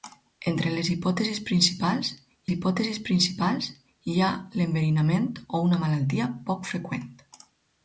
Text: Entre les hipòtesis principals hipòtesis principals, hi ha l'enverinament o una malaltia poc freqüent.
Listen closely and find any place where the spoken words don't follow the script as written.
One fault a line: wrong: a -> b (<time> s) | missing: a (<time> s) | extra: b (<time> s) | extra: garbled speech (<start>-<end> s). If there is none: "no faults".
no faults